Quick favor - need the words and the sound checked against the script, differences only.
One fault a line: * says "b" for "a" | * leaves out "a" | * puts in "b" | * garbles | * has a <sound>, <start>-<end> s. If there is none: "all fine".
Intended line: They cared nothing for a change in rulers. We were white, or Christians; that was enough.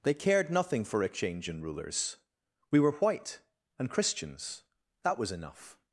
* says "and" for "or"